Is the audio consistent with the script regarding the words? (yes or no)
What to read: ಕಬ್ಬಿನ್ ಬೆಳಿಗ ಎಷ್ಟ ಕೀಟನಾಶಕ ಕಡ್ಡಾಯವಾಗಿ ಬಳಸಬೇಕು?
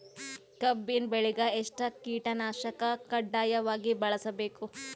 yes